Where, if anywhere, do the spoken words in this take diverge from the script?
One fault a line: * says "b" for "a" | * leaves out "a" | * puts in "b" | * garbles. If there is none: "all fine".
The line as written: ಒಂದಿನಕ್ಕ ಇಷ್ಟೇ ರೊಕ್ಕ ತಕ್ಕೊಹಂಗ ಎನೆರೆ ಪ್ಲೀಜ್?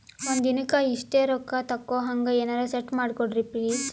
* puts in "ಸೆಟ್ ಮಾಡಕೋಡ್ರಿ"